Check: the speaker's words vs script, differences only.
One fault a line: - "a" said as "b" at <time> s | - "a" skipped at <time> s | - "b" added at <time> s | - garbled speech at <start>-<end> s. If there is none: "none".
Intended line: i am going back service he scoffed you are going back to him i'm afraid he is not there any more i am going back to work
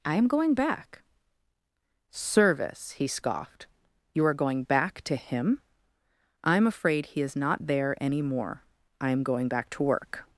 none